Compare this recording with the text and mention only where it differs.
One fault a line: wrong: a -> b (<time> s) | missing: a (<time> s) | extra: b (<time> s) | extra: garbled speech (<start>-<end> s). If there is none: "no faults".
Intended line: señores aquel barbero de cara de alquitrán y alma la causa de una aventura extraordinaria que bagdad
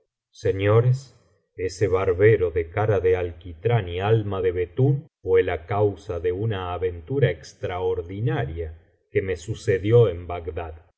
wrong: aquel -> ese (1.6 s)
extra: de betún fué (4.4 s)
extra: me sucedió en (9.2 s)